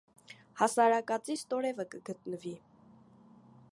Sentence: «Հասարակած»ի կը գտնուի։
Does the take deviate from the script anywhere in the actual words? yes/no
yes